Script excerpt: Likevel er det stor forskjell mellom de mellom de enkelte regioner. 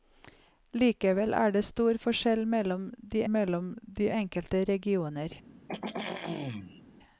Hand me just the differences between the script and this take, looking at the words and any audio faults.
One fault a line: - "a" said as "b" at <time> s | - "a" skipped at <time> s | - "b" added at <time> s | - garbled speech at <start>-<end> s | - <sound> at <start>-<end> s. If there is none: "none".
- throat clearing at 5.7-6.8 s